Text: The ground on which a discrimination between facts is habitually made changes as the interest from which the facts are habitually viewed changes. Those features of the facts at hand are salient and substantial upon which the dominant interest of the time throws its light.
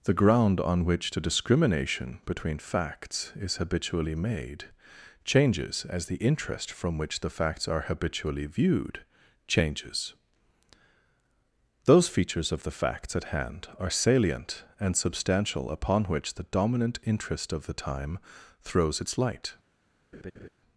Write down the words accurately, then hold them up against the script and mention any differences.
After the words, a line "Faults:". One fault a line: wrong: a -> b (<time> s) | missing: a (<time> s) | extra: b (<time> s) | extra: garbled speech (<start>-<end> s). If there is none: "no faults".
The ground on which the discrimination between facts is habitually made changes as the interest from which the facts are habitually viewed changes. Those features of the facts at hand are salient and substantial upon which the dominant interest of the time throws its light.
Faults:
wrong: a -> the (1.1 s)